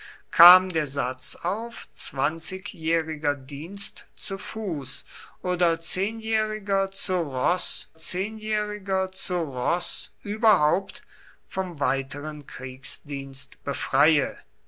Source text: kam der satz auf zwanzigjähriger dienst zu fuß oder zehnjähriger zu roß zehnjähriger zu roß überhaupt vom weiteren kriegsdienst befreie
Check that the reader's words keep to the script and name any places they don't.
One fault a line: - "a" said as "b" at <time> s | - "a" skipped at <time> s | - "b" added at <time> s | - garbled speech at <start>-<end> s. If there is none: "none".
none